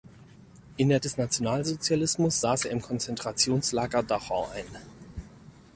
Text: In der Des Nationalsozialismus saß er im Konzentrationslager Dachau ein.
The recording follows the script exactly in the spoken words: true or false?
true